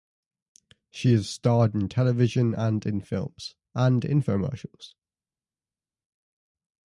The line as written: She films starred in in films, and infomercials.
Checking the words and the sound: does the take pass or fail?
fail